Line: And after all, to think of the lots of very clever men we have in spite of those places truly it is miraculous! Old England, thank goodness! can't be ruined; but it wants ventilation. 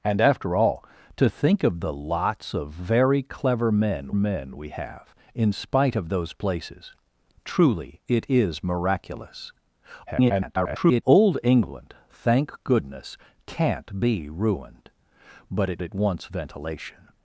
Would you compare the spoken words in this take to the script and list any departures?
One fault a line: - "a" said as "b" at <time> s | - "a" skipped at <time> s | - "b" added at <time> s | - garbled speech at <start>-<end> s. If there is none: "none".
- "men" added at 4.1 s
- garbled speech at 10.1-11.0 s
- "it" added at 15.8 s